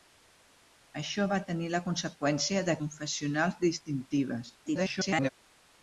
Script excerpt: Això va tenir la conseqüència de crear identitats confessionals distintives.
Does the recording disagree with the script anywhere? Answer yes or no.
yes